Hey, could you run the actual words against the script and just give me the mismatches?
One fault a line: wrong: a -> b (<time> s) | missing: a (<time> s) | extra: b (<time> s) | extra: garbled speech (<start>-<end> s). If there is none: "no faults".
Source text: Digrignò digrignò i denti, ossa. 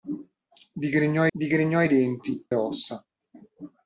no faults